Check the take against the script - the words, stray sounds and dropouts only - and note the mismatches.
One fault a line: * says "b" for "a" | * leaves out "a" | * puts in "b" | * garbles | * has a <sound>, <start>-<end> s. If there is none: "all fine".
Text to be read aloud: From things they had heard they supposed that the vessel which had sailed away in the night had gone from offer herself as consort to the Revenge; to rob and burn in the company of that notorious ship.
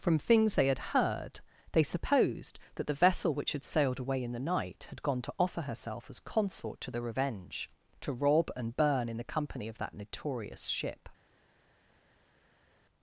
* says "to" for "from"